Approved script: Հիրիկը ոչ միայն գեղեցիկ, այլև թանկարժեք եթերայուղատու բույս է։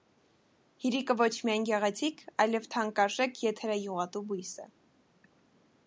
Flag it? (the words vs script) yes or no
no